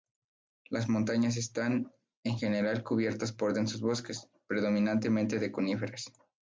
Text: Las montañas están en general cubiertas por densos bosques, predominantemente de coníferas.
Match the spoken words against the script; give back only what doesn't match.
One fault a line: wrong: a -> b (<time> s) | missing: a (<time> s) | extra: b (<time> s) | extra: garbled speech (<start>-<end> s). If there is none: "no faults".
no faults